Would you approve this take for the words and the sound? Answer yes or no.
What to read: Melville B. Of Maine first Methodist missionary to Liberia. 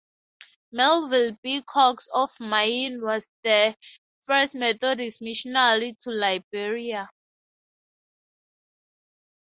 no